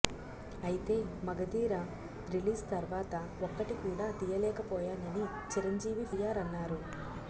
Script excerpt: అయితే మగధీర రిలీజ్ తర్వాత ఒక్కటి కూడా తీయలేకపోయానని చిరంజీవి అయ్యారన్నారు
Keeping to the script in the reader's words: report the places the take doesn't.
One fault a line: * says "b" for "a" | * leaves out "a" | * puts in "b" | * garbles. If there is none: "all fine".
all fine